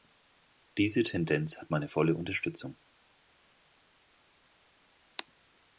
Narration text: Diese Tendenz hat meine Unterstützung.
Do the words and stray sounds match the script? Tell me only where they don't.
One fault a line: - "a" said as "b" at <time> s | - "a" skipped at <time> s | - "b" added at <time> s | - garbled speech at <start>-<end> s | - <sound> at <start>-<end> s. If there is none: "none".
- "volle" added at 1.9 s